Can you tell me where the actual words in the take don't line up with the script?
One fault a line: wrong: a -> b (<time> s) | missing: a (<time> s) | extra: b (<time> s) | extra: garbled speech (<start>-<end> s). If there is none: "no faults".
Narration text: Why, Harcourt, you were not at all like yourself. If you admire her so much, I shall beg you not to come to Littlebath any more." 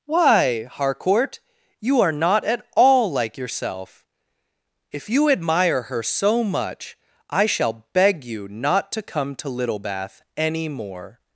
wrong: were -> are (2.0 s)